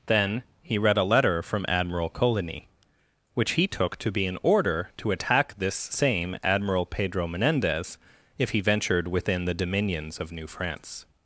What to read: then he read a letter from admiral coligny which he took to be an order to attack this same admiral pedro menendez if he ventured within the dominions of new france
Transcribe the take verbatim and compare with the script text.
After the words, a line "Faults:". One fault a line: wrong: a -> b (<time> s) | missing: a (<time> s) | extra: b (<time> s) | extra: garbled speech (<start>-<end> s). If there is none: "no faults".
then he read a letter from admiral coligny which he took to be an order to attack this same admiral pedro menendez if he ventured within the dominions of new france
Faults:
no faults